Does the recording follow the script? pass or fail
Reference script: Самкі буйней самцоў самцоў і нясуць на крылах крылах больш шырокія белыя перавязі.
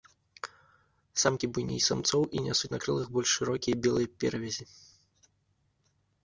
fail